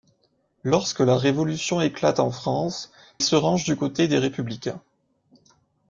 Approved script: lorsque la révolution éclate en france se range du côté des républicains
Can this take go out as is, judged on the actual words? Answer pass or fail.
pass